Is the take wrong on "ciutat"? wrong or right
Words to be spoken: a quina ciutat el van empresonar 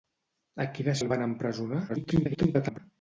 wrong